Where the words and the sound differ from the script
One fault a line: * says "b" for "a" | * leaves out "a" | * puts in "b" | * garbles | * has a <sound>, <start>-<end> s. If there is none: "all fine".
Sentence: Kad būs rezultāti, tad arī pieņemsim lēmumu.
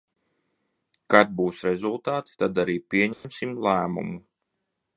* has a dropout, 3.1-3.2 s